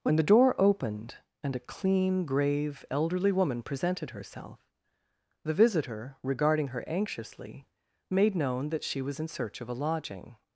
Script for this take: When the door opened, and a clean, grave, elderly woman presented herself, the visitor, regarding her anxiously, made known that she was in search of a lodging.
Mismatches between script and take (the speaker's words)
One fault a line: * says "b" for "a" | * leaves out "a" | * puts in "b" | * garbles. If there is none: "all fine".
all fine